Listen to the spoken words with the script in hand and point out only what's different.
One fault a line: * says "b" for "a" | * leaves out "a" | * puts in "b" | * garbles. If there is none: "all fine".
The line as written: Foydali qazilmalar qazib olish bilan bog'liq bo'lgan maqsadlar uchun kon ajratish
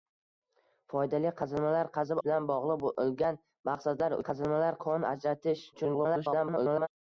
* leaves out "olish"
* says "qazilmalar" for "uchun"
* garbles